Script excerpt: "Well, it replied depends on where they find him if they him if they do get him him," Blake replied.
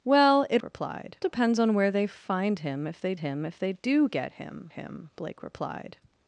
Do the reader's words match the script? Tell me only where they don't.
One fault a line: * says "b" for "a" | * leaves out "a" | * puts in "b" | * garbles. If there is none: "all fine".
all fine